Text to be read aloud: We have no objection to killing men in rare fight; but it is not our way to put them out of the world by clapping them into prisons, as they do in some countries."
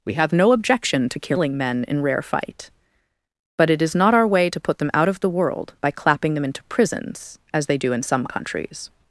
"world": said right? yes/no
yes